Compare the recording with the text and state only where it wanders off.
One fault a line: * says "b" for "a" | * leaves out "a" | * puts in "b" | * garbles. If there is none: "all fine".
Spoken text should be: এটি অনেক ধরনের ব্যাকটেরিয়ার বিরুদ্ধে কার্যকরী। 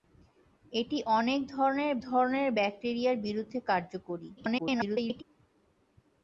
* puts in "ধরনের"
* garbles